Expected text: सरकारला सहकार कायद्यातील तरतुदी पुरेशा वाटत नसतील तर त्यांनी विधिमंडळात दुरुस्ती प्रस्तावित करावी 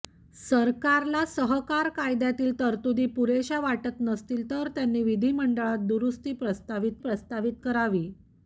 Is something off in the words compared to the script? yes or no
yes